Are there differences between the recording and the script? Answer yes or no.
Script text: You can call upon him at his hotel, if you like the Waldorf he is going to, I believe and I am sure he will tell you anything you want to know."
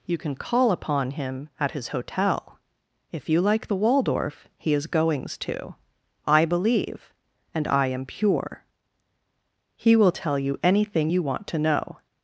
yes